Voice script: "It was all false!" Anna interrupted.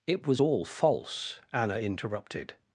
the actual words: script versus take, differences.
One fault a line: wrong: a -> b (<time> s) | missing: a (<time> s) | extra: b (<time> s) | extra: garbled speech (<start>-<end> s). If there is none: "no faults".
no faults